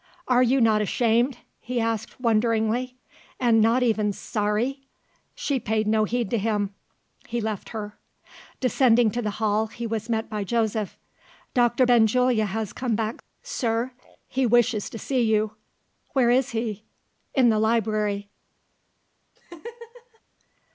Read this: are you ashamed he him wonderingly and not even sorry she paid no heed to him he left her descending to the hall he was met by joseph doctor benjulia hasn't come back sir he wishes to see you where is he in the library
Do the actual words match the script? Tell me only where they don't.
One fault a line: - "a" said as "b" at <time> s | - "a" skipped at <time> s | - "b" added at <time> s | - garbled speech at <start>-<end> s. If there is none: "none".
- "not" added at 0.6 s
- "him" said as "asked" at 1.8 s
- "hasn't" said as "has" at 12.4 s